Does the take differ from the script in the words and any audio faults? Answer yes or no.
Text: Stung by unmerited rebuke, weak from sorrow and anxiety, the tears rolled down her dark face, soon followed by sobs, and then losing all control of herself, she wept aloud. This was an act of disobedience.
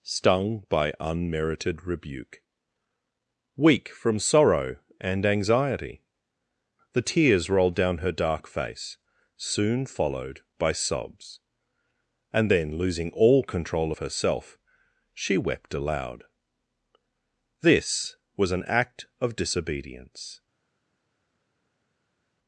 no